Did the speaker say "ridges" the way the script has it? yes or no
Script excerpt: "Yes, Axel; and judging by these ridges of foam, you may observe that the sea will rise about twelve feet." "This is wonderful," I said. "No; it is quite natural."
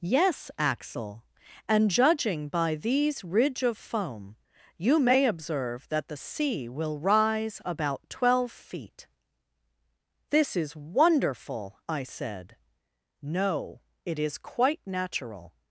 no